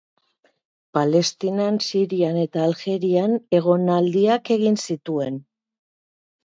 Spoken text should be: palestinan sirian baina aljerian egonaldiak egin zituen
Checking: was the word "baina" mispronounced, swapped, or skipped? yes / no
yes